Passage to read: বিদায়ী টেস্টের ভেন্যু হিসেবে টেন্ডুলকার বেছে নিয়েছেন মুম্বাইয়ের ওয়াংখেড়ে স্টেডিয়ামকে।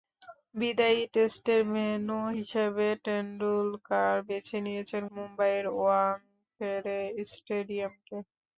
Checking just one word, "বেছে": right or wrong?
right